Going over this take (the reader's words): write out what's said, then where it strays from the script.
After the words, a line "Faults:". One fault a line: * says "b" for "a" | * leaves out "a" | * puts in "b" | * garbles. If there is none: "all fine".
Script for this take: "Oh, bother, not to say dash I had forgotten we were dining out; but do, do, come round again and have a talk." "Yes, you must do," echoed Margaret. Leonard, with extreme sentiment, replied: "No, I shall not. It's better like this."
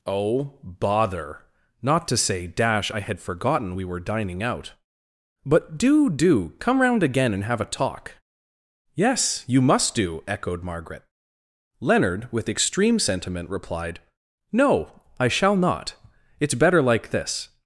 "Oh, bother, not to say dash I had forgotten we were dining out; but do, do, come round again and have a talk." "Yes, you must do," echoed Margaret. Leonard, with extreme sentiment, replied: "No, I shall not. It's better like this."
Faults:
all fine